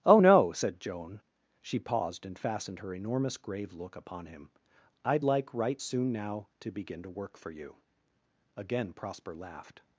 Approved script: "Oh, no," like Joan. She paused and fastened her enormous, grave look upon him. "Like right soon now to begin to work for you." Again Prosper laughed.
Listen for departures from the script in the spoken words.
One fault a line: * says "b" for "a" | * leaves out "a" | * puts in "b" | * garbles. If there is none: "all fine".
* says "said" for "like"
* puts in "I'd"